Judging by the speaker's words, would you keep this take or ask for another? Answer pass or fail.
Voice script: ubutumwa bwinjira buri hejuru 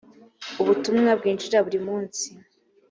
fail